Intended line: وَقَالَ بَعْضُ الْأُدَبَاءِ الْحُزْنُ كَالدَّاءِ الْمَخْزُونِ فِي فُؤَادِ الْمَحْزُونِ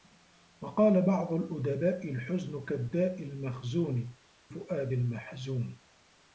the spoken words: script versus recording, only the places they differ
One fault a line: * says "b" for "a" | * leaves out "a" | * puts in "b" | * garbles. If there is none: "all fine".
* leaves out "فِي"